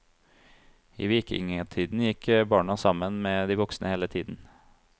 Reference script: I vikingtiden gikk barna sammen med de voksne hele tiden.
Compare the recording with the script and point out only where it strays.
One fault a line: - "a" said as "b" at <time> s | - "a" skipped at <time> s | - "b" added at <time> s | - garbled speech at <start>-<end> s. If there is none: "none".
none